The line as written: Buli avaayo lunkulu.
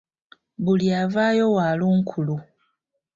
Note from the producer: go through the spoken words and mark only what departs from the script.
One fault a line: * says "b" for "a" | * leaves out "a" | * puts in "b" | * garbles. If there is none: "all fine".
* puts in "wa"